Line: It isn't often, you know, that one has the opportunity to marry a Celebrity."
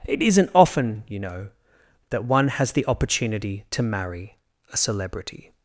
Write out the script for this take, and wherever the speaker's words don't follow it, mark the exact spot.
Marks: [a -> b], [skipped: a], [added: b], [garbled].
It isn't often, you know, that one has the opportunity to marry a Celebrity."